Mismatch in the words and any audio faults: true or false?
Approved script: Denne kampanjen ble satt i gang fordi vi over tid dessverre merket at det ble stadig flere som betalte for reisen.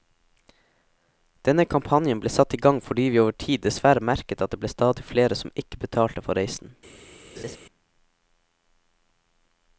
true